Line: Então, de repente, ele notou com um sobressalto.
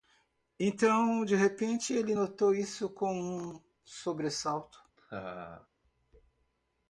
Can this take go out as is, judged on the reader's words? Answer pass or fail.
fail